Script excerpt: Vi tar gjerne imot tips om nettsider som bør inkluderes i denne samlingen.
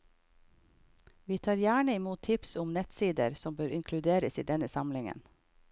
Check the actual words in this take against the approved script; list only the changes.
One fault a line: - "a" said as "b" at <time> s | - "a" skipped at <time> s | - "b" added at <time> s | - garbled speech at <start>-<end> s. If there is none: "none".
none